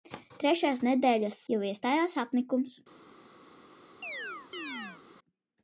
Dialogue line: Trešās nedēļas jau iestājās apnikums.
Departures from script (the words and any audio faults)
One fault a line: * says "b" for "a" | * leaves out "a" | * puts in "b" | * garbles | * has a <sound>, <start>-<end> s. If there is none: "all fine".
* has a chirp, 4.0-5.0 s